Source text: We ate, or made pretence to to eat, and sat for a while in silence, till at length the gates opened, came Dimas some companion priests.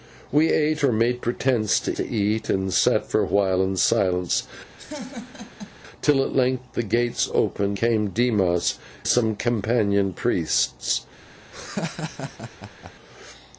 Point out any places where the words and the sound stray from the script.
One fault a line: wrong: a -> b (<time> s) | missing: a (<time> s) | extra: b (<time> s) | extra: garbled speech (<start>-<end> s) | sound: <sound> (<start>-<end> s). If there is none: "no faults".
sound: laugh (4.8-5.8 s)
sound: laugh (11.5-12.9 s)